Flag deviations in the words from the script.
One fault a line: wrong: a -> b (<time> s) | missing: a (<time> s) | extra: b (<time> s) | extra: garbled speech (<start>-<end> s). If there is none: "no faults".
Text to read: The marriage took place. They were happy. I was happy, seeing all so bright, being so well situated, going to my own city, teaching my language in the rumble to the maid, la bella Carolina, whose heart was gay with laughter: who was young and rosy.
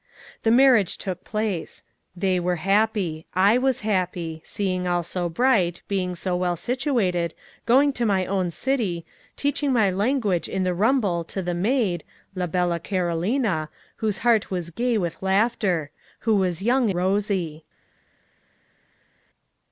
missing: and (16.9 s)